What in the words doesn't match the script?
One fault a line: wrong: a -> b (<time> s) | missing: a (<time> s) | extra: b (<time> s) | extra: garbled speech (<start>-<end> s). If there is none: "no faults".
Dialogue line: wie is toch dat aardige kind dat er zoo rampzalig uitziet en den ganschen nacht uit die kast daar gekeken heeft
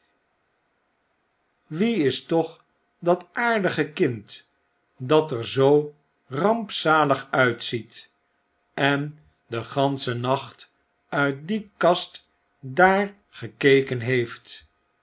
no faults